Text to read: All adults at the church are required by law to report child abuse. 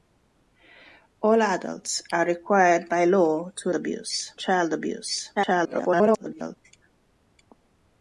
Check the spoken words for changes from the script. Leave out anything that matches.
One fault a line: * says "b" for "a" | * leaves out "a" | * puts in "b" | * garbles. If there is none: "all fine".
* leaves out "at the church"
* says "abuse" for "report"
* garbles